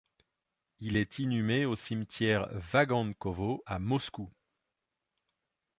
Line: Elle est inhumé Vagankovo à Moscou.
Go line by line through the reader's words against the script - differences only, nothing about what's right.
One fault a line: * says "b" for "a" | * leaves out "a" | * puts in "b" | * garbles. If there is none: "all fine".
* says "Il" for "Elle"
* puts in "au Cimetière"